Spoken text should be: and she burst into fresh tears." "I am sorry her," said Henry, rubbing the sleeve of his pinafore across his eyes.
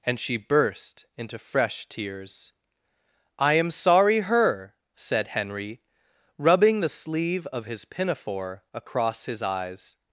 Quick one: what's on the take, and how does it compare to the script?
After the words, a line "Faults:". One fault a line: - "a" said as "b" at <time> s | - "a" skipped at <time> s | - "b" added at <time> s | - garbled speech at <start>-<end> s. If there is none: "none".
and she burst into fresh tears." "I am sorry her," said Henry, rubbing the sleeve of his pinafore across his eyes.
Faults:
none